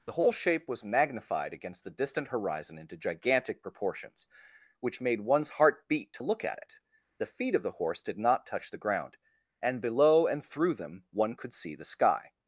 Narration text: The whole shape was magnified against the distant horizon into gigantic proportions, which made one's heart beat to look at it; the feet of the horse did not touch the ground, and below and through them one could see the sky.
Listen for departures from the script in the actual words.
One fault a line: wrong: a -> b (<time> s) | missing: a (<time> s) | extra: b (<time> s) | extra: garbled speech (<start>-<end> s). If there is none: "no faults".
no faults